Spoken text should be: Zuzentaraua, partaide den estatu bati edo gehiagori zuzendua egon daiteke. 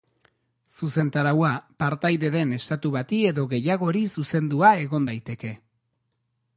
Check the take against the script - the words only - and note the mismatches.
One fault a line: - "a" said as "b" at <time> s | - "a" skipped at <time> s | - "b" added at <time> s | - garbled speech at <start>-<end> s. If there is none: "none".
none